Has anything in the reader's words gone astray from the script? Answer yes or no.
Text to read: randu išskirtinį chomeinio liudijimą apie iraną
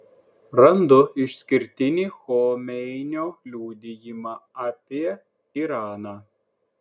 no